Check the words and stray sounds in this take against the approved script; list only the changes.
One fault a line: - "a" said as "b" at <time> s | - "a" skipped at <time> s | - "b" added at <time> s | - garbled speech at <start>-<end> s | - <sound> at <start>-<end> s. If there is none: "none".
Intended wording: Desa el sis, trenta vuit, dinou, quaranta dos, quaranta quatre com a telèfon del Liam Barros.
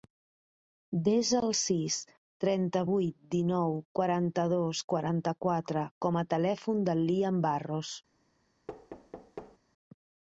- thud at 8.7-9.6 s